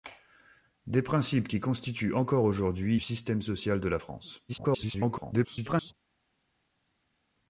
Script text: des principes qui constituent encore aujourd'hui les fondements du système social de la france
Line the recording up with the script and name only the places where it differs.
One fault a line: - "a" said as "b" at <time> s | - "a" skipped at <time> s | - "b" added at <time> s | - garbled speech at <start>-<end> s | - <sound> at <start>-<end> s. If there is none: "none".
- "les fondements du" skipped at 3.0 s
- garbled speech at 4.5-5.9 s